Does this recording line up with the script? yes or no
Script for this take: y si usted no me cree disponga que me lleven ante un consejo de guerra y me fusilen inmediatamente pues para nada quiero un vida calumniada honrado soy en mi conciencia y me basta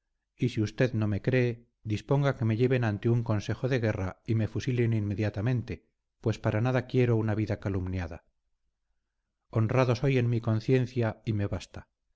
no